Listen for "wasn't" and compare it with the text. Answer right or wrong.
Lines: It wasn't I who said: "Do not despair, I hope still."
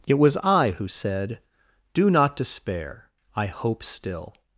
wrong